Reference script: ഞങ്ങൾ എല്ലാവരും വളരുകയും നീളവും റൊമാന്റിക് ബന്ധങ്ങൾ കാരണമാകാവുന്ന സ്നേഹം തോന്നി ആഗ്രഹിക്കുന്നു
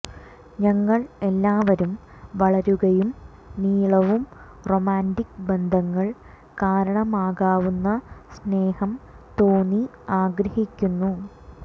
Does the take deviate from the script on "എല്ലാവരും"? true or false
false